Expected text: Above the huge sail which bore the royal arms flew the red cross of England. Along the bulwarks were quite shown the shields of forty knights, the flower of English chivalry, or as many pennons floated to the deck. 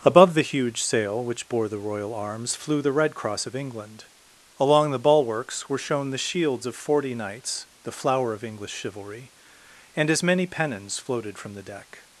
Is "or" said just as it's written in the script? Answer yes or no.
no